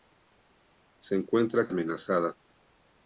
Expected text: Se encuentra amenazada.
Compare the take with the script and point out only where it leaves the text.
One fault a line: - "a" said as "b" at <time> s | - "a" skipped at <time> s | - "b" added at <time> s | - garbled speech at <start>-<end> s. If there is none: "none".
none